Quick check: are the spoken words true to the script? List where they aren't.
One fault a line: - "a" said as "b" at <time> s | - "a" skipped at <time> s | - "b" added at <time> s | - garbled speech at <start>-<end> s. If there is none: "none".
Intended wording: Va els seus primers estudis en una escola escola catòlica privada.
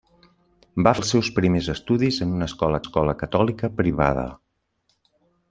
none